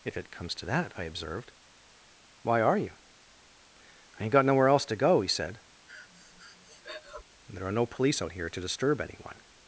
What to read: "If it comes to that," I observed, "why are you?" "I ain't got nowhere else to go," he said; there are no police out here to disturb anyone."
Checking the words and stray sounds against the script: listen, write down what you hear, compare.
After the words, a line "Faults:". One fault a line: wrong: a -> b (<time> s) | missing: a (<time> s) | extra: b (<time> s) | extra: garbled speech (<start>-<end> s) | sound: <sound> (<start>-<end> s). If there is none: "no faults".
"If it comes to that," I observed, "why are you?" "I ain't got nowhere else to go," he said; there are no police out here to disturb anyone."
Faults:
sound: breath (5.9-7.2 s)